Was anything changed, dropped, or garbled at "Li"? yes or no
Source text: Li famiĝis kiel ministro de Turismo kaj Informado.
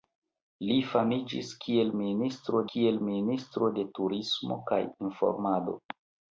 no